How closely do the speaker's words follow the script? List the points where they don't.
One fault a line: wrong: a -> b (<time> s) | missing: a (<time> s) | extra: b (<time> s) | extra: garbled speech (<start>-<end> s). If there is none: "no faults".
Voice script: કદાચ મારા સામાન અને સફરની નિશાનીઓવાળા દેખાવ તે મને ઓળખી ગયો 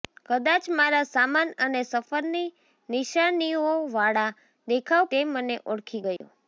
no faults